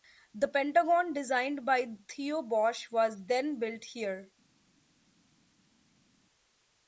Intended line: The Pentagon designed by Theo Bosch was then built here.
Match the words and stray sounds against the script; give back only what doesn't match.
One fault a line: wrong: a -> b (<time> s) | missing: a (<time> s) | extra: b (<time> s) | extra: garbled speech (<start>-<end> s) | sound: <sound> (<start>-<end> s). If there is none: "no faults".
no faults